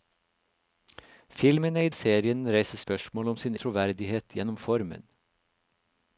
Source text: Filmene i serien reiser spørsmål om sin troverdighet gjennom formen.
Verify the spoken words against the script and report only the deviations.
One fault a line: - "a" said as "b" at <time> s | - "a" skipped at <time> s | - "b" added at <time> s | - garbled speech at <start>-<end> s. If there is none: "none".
none